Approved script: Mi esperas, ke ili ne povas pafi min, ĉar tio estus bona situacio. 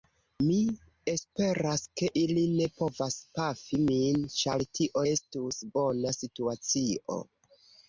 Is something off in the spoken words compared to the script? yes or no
no